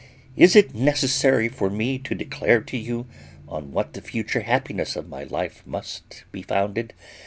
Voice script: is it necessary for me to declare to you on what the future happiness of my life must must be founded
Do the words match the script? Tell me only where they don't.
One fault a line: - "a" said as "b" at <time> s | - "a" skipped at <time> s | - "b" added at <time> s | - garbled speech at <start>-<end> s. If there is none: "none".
- "must" skipped at 6.2 s